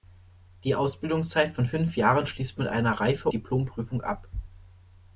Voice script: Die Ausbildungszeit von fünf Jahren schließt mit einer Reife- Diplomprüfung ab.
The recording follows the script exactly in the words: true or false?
true